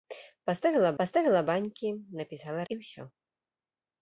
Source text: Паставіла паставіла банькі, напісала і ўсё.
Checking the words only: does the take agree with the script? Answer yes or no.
yes